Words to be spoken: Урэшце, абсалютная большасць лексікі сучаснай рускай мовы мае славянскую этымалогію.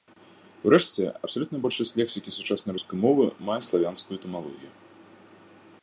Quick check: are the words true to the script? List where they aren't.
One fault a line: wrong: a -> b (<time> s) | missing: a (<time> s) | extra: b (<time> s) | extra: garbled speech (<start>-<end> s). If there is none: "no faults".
no faults